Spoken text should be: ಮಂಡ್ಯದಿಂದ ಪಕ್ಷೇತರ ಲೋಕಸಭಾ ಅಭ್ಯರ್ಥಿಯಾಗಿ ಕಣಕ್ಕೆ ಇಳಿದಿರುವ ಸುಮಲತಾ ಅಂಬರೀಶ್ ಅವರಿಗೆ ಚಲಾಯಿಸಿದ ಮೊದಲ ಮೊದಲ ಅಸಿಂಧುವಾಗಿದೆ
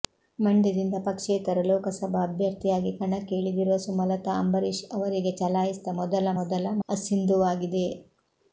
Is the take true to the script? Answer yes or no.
yes